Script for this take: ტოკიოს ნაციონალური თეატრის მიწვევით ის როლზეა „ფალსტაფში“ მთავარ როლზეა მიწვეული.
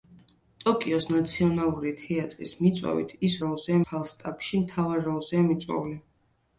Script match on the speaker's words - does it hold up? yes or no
yes